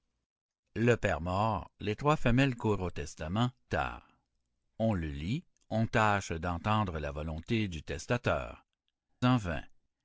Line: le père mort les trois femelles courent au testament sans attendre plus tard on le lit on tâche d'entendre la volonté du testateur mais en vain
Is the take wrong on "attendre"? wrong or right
wrong